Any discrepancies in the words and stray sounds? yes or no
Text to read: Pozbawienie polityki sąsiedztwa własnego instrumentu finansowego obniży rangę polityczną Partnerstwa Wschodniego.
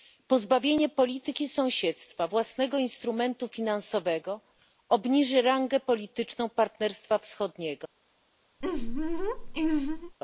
yes